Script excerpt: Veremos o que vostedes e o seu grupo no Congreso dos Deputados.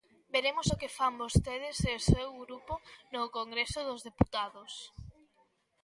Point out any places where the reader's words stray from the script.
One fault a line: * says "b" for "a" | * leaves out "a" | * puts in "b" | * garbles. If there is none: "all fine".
* puts in "fan"